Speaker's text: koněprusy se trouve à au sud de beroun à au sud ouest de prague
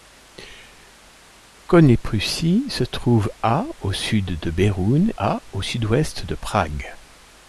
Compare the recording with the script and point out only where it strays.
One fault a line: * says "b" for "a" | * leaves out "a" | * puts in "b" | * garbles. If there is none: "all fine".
all fine